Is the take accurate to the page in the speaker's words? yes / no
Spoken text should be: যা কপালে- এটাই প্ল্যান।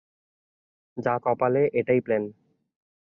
yes